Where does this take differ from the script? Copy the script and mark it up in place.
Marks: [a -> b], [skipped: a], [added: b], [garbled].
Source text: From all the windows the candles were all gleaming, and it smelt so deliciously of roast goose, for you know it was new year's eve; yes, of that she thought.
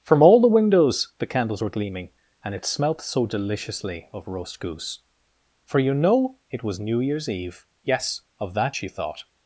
From all the windows the candles were [skipped: all] gleaming, and it smelt so deliciously of roast goose, for you know it was new year's eve; yes, of that she thought.